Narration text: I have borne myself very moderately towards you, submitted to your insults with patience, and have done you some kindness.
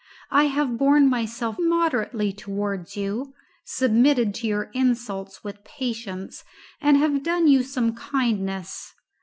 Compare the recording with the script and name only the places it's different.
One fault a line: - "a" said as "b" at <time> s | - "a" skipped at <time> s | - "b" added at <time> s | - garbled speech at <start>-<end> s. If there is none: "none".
- "very" skipped at 1.6 s